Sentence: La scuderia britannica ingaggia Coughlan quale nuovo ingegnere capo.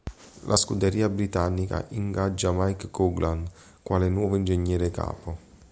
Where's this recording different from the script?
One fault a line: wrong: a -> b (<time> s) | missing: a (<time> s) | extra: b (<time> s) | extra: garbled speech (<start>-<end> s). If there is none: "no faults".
extra: Mike (2.5 s)